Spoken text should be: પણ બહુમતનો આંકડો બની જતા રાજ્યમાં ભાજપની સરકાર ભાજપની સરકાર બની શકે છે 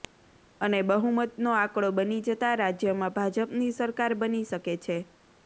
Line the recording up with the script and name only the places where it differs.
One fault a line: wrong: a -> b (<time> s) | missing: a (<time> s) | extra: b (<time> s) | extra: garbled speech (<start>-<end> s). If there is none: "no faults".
wrong: પણ -> અને (0.6 s)
missing: ભાજપની સરકાર (4.2 s)